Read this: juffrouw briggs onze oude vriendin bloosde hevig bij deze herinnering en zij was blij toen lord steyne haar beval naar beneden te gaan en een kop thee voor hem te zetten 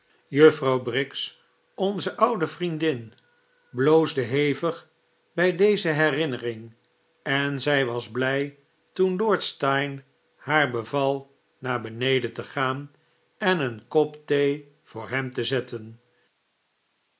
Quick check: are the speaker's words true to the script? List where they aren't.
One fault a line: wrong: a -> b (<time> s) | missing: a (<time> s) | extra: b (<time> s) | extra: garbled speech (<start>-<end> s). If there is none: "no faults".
no faults